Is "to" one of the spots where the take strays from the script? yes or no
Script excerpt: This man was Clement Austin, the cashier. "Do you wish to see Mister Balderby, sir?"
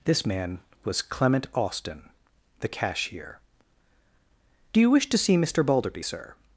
no